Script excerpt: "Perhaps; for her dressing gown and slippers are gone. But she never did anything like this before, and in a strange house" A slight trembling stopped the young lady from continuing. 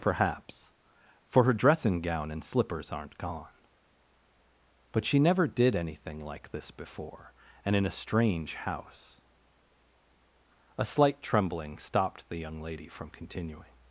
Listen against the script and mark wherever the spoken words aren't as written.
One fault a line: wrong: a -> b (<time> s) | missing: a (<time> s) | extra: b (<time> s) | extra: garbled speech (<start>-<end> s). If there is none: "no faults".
wrong: are -> aren't (2.9 s)